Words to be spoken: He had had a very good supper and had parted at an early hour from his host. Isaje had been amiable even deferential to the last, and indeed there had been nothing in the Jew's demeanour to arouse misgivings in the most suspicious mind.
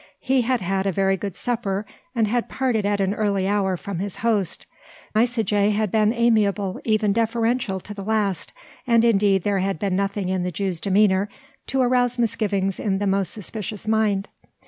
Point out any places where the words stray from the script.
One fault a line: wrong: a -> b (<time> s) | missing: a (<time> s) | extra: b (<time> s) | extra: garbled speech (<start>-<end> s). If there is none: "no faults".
no faults